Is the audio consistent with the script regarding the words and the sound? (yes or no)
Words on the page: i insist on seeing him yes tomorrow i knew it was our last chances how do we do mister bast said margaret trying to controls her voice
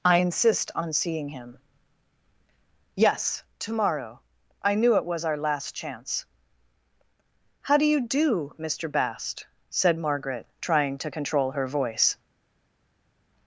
no